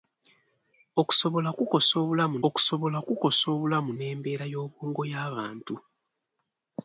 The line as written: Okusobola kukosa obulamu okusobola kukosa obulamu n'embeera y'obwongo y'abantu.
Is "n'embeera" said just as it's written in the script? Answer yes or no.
yes